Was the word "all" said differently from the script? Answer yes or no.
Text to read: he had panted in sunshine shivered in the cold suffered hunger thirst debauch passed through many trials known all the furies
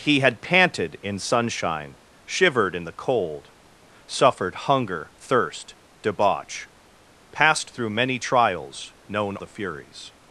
yes